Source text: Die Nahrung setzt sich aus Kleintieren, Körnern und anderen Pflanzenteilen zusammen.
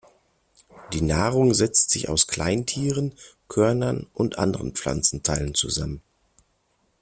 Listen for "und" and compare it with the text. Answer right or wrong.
right